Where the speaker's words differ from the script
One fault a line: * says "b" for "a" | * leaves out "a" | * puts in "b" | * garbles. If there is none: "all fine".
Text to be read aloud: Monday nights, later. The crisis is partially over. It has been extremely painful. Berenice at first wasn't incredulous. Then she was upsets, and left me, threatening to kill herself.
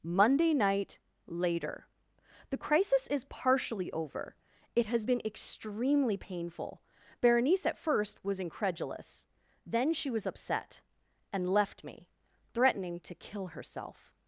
* says "night" for "nights"
* says "was" for "wasn't"
* says "upset" for "upsets"